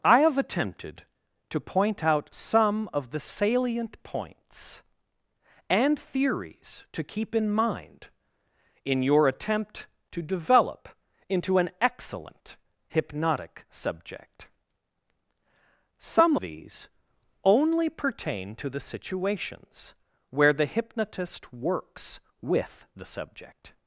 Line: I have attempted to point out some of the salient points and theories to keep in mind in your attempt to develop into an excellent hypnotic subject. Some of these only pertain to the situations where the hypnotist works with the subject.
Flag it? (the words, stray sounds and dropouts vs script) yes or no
yes